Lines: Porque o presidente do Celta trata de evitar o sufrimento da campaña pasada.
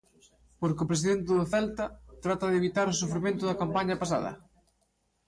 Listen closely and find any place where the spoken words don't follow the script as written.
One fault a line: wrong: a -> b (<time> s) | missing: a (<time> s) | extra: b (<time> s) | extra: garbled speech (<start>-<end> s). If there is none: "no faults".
no faults